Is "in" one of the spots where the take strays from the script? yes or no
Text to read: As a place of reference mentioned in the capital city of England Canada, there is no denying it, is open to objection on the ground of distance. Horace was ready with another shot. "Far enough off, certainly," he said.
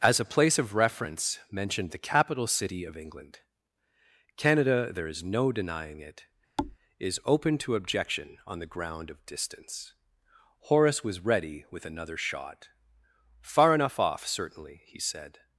yes